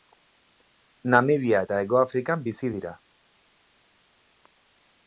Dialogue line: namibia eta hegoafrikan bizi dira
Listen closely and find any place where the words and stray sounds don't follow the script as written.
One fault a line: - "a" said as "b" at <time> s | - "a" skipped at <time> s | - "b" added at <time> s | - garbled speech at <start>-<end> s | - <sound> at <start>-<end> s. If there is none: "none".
none